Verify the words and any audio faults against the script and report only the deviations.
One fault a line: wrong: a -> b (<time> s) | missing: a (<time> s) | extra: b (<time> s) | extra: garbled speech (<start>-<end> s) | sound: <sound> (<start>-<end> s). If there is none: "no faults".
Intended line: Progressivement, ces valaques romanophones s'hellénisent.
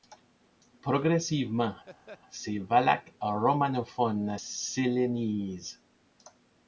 sound: laugh (1.9-2.2 s)